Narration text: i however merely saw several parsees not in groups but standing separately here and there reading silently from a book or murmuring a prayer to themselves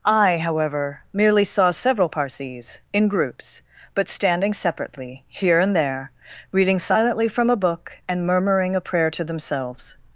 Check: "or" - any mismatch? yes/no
yes